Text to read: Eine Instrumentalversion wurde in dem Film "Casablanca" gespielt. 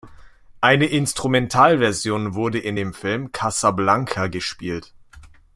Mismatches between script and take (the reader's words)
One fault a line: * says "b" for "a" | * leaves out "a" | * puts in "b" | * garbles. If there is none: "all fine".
all fine